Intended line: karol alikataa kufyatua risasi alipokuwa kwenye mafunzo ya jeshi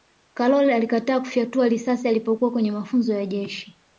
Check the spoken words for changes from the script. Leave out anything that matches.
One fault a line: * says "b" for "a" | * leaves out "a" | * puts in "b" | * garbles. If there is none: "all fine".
all fine